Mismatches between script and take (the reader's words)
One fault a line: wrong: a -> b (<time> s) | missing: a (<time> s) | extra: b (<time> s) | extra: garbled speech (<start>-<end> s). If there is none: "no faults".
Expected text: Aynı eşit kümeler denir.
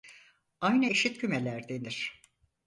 no faults